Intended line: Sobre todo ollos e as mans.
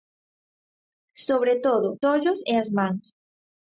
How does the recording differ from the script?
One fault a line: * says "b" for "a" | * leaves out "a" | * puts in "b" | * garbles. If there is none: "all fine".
all fine